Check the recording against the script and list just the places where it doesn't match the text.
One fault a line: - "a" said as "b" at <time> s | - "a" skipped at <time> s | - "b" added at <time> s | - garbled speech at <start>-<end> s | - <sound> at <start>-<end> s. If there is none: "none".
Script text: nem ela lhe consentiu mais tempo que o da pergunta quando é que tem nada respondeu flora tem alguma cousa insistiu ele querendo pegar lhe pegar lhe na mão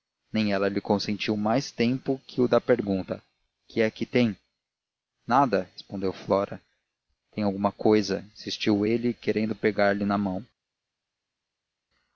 - "quando" said as "que" at 3.7 s
- "pegar lhe" skipped at 10.0 s